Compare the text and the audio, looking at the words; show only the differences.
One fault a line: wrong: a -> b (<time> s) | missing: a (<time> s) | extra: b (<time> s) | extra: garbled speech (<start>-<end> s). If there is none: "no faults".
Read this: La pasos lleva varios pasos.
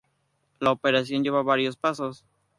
wrong: pasos -> operación (0.7 s)